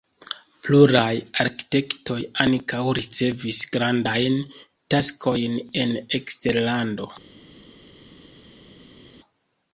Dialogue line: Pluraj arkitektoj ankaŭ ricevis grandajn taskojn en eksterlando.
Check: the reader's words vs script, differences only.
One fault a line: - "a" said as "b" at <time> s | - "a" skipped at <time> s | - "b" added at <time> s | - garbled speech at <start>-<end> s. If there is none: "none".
none